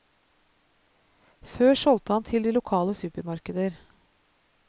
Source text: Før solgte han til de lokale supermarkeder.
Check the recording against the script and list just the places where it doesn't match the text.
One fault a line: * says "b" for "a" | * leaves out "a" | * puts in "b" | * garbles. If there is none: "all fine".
all fine